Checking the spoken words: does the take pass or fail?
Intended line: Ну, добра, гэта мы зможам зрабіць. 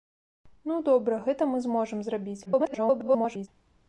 fail